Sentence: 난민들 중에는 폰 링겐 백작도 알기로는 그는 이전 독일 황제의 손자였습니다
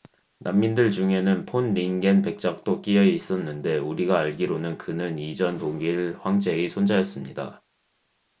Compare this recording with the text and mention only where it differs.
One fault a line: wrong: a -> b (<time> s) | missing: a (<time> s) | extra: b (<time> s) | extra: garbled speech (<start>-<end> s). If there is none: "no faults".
extra: 끼여 있었는데 우리가 (2.8 s)